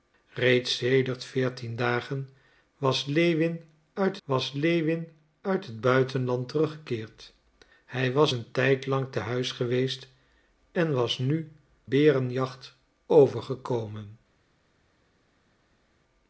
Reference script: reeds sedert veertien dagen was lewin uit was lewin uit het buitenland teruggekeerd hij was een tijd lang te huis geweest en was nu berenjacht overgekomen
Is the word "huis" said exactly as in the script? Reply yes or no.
yes